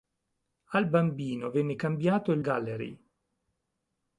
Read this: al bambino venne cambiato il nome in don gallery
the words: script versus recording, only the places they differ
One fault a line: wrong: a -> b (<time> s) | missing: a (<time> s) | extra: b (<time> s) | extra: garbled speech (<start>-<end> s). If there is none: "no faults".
missing: nome in don (2.4 s)